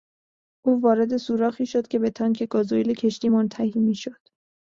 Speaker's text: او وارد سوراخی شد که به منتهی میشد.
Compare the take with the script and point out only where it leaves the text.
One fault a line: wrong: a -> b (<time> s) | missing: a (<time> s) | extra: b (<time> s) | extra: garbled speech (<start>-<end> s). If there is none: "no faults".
extra: تانک گازوئیل کشتی (2.1 s)